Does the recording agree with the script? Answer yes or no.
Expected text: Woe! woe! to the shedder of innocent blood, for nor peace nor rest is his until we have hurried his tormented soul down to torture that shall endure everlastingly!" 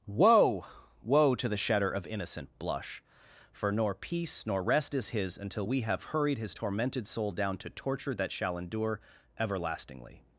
no